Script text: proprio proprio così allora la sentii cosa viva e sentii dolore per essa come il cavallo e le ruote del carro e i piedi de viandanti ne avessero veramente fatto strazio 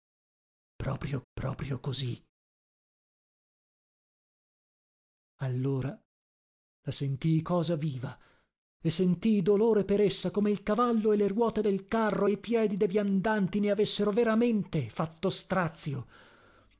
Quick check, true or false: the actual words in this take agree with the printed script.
true